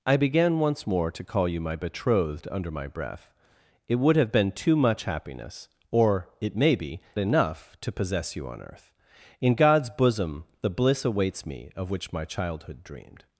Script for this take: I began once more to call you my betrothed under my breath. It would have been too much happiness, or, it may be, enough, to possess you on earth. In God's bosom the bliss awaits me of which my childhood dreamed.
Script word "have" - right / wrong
right